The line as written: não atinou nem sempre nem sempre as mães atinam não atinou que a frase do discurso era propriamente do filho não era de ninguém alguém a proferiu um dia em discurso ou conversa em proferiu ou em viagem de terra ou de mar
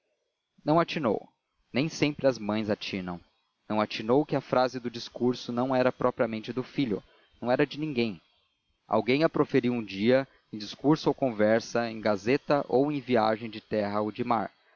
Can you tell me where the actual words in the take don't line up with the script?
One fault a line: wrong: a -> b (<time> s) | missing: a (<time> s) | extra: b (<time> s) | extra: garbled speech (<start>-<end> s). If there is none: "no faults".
missing: nem sempre (2.2 s)
extra: não (5.5 s)
wrong: proferiu -> gazeta (12.0 s)